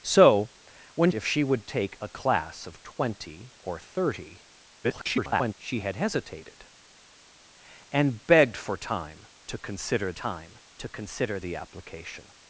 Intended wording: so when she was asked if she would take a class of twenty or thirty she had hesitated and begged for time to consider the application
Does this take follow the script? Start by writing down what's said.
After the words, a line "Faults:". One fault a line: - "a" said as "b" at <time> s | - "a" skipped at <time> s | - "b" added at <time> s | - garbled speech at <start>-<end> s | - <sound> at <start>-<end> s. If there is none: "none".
so when if she would take a class of twenty or thirty [garbled] she had hesitated and begged for time to consider time to consider the application
Faults:
- "she was asked" skipped at 1.1 s
- garbled speech at 4.8-5.5 s
- "time to consider" added at 10.1 s